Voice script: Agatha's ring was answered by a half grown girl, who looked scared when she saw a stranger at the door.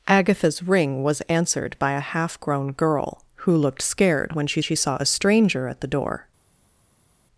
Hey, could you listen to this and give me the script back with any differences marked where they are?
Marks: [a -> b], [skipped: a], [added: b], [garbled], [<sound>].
Agatha's ring was answered by a half grown girl, who looked scared when she [added: she] saw a stranger at the door.